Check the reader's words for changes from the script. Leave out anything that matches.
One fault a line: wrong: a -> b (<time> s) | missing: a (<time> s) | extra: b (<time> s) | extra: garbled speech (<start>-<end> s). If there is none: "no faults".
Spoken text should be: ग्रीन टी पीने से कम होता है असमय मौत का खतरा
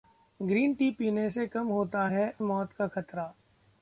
missing: असमय (2.3 s)